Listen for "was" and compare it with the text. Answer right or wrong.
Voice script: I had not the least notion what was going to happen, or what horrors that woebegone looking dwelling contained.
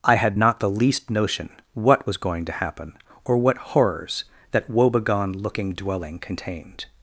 right